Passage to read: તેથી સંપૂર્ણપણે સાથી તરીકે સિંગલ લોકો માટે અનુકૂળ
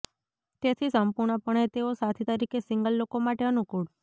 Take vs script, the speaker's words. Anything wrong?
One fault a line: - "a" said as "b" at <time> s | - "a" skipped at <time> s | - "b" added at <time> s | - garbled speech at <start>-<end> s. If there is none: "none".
- "તેઓ" added at 1.7 s